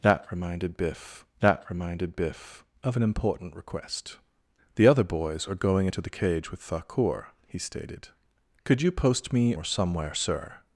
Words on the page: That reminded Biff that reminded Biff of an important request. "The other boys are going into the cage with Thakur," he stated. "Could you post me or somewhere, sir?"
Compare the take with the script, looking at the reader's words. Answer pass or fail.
pass